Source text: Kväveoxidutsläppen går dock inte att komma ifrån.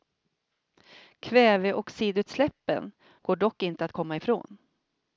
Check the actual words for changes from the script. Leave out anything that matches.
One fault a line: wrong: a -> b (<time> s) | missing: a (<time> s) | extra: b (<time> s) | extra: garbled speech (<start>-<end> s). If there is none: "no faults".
no faults